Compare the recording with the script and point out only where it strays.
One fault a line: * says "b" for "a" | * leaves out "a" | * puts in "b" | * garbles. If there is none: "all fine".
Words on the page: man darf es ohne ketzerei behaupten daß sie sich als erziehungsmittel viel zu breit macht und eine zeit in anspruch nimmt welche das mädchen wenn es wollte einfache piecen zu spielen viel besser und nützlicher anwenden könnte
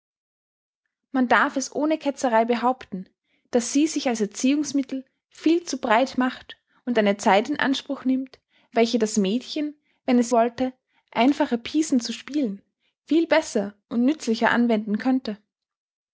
all fine